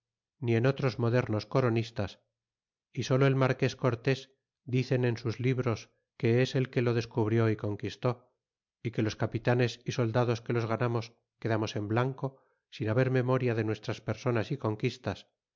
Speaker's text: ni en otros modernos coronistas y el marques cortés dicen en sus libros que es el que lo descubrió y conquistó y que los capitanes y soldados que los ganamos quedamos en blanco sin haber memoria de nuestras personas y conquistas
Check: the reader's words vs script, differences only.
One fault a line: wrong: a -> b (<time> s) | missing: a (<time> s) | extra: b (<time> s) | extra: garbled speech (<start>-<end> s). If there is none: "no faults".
extra: solo (3.0 s)